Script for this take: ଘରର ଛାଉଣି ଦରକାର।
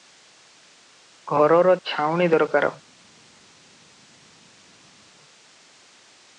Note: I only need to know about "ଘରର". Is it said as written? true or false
true